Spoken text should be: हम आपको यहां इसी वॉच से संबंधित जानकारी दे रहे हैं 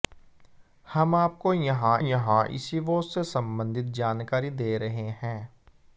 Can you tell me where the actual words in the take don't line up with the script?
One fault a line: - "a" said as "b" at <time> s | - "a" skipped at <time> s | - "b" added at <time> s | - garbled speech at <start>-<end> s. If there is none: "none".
- "यहां" added at 2.0 s